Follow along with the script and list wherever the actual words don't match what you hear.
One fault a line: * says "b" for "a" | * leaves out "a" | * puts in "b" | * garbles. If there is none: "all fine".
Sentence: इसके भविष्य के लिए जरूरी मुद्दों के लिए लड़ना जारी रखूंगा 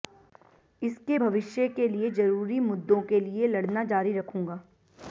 all fine